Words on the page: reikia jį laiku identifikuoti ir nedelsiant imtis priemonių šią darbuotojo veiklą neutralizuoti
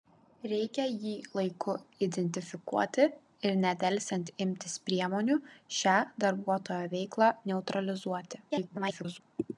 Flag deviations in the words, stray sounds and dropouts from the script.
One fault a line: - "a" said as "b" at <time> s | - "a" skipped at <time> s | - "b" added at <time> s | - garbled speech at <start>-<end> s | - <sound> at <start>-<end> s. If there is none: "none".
- garbled speech at 8.5-9.2 s